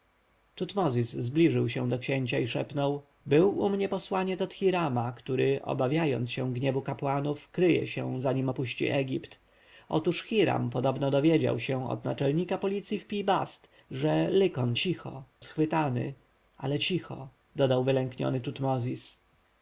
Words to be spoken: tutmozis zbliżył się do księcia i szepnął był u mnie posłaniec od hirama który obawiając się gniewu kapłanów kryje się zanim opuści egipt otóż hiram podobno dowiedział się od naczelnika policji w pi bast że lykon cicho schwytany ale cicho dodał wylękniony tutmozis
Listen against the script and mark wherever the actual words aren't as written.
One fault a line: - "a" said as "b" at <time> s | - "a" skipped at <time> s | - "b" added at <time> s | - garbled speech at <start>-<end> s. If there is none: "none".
none